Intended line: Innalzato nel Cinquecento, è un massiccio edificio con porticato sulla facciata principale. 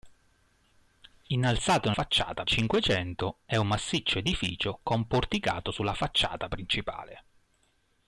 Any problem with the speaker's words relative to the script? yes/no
yes